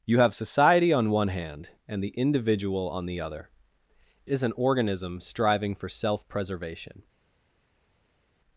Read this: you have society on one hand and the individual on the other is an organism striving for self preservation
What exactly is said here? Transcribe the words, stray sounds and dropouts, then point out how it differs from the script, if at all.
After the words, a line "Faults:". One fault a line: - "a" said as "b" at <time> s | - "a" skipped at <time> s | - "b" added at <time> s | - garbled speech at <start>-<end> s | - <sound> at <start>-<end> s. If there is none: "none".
you have society on one hand and the individual on the other is an organism striving for self preservation
Faults:
none